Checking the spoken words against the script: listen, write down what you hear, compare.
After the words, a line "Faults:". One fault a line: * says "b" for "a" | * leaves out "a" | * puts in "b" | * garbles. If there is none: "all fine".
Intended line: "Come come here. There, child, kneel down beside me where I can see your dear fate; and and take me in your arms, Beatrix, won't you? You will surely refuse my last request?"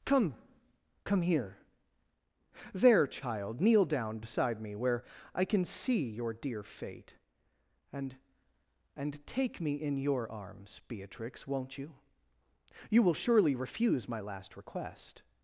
"Come come here. There, child, kneel down beside me where I can see your dear fate; and and take me in your arms, Beatrix, won't you? You will surely refuse my last request?"
Faults:
all fine